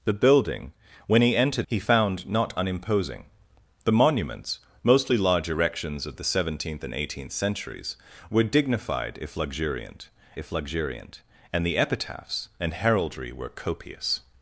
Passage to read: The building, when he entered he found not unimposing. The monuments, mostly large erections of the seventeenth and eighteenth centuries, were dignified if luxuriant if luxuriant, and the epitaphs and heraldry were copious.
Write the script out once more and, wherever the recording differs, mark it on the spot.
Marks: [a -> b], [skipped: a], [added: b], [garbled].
The building, when he entered he found not unimposing. The monuments, mostly large erections of the seventeenth and eighteenth centuries, were dignified if luxuriant if luxuriant, and the epitaphs and heraldry were copious.